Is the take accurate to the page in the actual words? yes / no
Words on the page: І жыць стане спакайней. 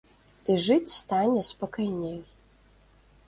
yes